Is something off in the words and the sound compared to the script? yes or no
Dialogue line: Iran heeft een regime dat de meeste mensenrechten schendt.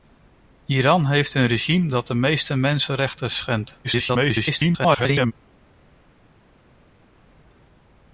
yes